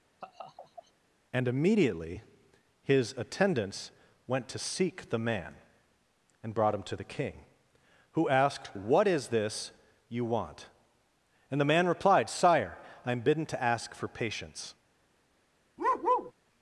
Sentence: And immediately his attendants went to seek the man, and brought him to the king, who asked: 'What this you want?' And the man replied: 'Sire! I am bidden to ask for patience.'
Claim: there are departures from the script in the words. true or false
true